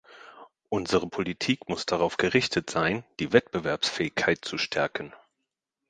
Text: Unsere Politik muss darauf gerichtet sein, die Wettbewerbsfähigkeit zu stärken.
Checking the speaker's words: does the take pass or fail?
pass